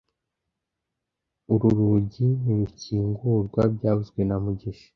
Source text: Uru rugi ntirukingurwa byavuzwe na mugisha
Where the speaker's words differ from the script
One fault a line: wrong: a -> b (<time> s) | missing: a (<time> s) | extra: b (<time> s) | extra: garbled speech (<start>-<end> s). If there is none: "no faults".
no faults